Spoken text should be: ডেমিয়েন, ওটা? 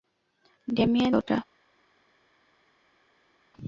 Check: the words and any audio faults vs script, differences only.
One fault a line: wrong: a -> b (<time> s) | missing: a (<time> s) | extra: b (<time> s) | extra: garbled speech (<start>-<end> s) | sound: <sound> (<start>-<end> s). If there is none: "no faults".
no faults